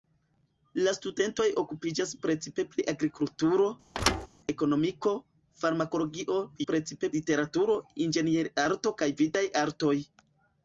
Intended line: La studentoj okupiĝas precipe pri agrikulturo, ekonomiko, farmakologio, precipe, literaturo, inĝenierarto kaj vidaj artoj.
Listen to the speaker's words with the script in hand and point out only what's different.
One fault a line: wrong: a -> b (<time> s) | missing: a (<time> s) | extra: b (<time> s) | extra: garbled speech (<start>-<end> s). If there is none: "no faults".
no faults